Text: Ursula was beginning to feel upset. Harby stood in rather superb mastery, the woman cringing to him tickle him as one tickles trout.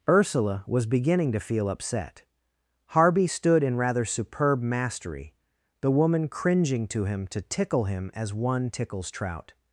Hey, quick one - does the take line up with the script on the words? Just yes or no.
no